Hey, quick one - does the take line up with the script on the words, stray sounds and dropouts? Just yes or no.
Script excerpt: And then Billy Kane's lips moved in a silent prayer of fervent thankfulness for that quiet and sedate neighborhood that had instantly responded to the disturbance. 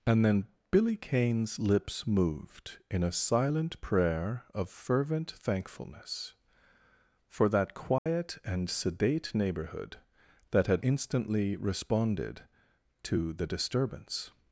no